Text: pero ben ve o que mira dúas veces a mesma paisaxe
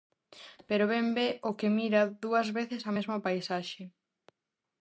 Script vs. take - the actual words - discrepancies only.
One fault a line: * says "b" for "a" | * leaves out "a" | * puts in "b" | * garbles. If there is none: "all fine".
all fine